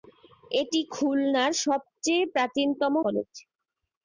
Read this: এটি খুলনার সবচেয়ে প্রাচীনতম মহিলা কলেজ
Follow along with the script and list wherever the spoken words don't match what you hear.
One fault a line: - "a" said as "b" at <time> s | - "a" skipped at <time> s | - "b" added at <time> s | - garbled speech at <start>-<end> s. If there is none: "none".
- "মহিলা" skipped at 2.9 s